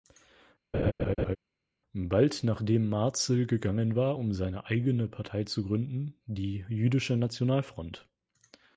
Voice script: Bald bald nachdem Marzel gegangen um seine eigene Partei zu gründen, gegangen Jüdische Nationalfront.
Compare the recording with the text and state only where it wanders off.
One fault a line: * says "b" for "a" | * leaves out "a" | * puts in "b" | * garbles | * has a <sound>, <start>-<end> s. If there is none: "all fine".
* has a laugh, 0.7-1.4 s
* leaves out "bald"
* puts in "war"
* says "die" for "gegangen"